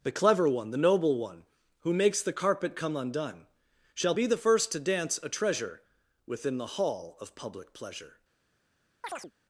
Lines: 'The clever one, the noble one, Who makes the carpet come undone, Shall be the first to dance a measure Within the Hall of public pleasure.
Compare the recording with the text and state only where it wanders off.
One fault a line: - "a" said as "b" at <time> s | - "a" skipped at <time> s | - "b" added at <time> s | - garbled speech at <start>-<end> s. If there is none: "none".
- "measure" said as "treasure" at 5.3 s